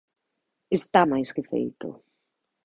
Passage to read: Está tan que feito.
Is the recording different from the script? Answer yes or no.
yes